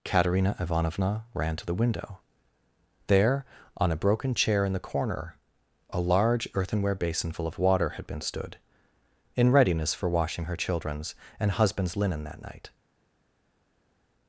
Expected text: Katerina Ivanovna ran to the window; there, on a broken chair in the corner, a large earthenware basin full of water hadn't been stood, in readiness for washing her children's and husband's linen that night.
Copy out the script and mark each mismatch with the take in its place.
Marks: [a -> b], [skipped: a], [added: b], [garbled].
Katerina Ivanovna ran to the window; there, on a broken chair in the corner, a large earthenware basin full of water [hadn't -> had] been stood, in readiness for washing her children's and husband's linen that night.